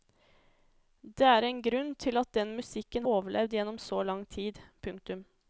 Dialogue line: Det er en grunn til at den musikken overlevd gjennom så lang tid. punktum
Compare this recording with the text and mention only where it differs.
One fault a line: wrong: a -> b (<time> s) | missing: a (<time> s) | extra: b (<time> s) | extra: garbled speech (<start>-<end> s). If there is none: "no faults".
no faults